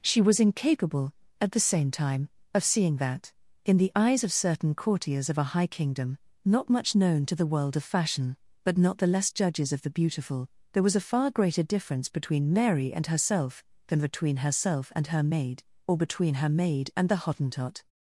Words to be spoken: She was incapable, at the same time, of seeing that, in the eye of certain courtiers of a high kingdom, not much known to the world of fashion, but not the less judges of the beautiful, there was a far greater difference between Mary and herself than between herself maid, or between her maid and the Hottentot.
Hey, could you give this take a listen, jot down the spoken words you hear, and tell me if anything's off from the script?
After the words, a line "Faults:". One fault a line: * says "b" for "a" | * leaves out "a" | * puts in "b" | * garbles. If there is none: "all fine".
She was incapable, at the same time, of seeing that, in the eyes of certain courtiers of a high kingdom, not much known to the world of fashion, but not the less judges of the beautiful, there was a far greater difference between Mary and herself than between herself and her maid, or between her maid and the Hottentot.
Faults:
* says "eyes" for "eye"
* puts in "and her"